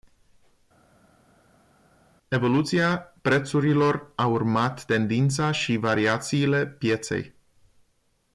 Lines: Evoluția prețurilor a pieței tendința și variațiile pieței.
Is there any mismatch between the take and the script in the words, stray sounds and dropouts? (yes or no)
yes